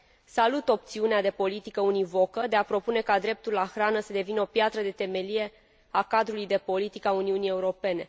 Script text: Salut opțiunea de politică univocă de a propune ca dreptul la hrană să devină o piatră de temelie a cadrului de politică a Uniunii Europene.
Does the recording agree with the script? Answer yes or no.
yes